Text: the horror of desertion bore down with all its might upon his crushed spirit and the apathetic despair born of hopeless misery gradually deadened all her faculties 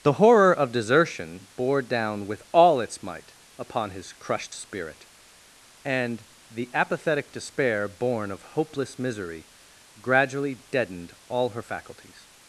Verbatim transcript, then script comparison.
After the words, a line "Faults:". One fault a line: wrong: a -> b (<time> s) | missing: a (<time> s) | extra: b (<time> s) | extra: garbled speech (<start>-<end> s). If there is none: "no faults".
the horror of desertion bore down with all its might upon his crushed spirit and the apathetic despair born of hopeless misery gradually deadened all her faculties
Faults:
no faults